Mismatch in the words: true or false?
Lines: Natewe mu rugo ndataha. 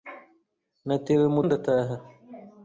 true